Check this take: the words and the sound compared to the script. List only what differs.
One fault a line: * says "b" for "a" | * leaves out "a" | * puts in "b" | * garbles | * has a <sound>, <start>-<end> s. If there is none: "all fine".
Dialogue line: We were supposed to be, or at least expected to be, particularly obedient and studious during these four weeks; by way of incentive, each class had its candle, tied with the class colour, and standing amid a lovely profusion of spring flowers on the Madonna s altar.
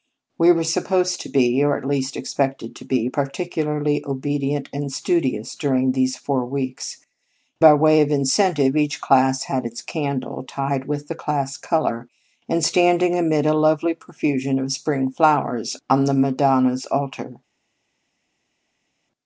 all fine